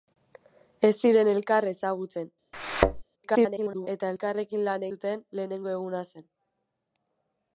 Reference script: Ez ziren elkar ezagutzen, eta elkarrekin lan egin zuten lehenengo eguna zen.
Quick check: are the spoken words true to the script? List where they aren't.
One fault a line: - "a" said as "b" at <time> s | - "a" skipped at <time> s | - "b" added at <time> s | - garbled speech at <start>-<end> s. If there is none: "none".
- garbled speech at 3.2-3.9 s
- "egin" skipped at 4.9 s